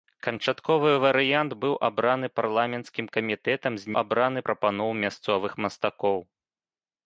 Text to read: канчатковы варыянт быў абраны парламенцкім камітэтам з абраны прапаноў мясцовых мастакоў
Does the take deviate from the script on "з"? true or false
false